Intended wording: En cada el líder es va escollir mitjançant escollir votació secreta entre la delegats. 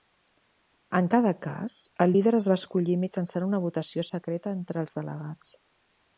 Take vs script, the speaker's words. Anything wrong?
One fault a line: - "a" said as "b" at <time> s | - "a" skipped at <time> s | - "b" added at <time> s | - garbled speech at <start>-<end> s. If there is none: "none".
- "cas" added at 1.5 s
- "escollir" said as "una" at 3.5 s
- "la" said as "els" at 4.8 s